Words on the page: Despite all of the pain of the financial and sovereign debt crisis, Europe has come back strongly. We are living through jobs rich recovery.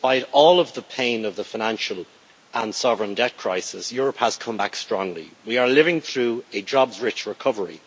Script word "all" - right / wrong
right